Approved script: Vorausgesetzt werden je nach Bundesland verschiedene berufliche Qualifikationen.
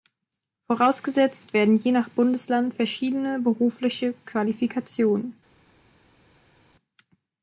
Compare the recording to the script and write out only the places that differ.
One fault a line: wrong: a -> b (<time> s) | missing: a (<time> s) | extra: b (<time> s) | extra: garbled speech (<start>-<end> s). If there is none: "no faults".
no faults